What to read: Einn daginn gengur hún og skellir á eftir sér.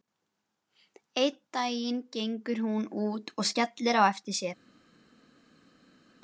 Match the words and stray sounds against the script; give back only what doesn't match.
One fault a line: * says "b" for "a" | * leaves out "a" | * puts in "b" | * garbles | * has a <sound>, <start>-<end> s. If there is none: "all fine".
* puts in "út"